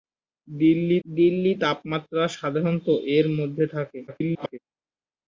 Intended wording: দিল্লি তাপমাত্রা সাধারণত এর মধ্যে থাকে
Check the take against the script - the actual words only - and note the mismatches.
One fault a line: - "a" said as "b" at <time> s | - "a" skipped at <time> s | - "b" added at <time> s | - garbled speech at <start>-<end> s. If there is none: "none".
- "দিল্লি" added at 1.0 s
- garbled speech at 4.1-4.6 s